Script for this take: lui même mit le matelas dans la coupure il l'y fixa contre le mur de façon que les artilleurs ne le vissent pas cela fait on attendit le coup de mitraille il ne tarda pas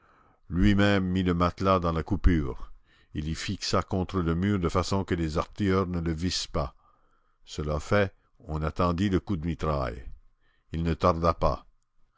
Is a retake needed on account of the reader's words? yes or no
no